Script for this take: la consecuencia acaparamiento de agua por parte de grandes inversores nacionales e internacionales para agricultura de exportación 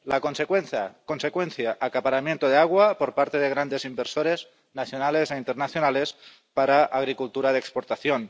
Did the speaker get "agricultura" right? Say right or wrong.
right